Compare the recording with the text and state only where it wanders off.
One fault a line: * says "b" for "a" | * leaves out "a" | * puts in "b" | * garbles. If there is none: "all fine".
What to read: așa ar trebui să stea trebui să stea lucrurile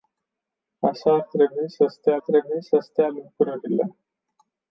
all fine